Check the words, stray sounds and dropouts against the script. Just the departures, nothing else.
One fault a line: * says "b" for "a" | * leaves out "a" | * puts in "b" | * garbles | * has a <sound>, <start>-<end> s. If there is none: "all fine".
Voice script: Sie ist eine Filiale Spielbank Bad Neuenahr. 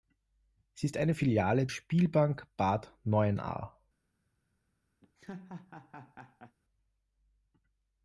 * has a laugh, 5.0-6.6 s